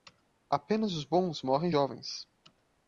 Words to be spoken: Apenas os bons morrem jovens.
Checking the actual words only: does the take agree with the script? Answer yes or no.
yes